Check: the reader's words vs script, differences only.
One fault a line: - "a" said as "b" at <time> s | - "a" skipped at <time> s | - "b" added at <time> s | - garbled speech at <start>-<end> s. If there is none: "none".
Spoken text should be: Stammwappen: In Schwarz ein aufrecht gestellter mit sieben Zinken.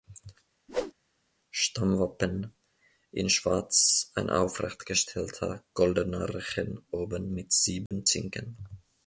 - "goldener Rechen oben" added at 5.7 s